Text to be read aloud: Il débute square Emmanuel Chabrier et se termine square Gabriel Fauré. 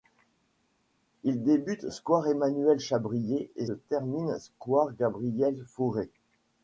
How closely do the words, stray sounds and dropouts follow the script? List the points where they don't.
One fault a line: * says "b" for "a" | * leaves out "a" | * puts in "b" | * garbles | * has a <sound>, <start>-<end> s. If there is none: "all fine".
* leaves out "se"